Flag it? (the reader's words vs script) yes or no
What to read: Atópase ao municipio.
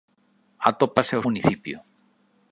no